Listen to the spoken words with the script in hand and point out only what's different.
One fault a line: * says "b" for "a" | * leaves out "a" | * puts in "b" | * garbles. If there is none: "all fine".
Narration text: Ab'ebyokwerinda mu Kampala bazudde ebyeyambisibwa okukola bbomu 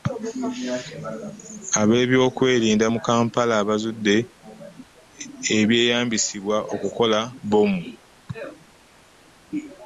all fine